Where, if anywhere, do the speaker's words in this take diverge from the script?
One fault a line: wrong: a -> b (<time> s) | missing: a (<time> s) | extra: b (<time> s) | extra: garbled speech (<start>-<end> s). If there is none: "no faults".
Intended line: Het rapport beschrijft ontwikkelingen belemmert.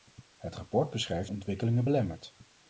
no faults